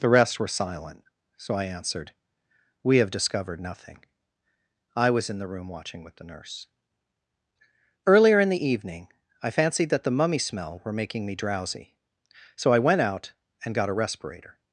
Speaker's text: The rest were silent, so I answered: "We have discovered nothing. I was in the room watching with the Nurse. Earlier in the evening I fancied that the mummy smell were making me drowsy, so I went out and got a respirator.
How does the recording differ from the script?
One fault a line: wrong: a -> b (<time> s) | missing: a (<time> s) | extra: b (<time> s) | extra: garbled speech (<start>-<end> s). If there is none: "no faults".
no faults